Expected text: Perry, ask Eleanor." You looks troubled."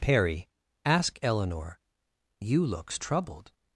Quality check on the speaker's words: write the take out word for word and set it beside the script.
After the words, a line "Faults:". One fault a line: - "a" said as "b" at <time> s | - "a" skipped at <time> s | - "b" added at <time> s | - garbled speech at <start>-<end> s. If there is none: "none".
Perry, ask Eleanor." You looks troubled."
Faults:
none